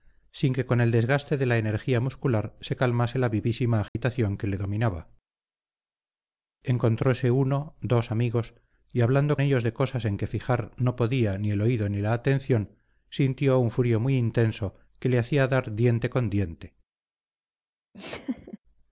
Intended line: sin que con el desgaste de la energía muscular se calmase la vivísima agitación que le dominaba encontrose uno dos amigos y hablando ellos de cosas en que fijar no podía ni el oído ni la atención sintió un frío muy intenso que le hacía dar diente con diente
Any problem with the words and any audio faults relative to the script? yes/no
yes